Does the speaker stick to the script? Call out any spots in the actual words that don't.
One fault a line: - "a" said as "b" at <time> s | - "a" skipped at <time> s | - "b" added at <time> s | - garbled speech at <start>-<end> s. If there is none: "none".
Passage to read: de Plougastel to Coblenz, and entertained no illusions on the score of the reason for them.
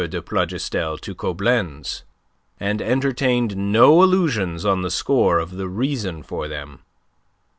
none